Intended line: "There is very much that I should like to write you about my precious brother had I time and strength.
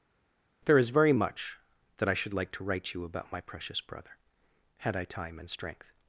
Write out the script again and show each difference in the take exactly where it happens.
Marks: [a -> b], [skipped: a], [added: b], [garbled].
"There is very much that I should like to write you about my precious brother had I time and strength.